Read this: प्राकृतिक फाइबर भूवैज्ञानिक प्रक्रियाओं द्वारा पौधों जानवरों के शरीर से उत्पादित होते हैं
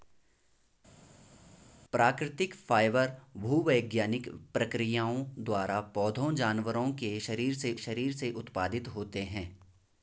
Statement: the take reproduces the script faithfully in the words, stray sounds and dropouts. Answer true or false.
false